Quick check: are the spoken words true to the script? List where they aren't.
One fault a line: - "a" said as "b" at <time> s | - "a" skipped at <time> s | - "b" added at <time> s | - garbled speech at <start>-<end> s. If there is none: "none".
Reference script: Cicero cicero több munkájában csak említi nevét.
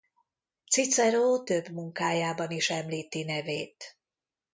- "cicero" skipped at 1.4 s
- "csak" said as "is" at 2.5 s